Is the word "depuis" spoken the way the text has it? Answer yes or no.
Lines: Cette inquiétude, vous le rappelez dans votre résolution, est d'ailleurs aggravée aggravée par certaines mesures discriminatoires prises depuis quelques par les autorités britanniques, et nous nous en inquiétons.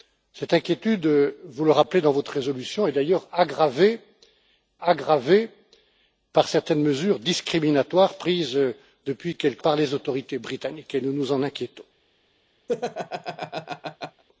yes